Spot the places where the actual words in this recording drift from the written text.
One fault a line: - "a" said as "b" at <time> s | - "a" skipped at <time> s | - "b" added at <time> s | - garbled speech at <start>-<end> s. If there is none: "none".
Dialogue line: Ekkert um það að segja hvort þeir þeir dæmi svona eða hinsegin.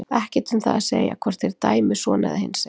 - "þeir" skipped at 1.5 s